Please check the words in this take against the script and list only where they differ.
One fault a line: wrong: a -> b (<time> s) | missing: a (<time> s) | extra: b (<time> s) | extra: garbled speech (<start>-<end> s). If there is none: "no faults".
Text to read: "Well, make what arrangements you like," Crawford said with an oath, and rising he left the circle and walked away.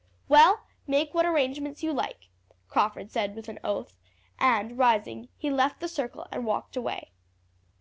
no faults